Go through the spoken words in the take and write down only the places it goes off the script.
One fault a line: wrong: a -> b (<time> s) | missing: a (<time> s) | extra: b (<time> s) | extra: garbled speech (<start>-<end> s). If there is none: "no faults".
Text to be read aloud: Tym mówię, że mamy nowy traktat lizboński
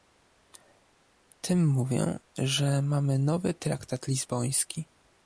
no faults